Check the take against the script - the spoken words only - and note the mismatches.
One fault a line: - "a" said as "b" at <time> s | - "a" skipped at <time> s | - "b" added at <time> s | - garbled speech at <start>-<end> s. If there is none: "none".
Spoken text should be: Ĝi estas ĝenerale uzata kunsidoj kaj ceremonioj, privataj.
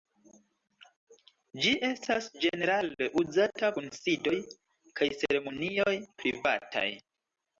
none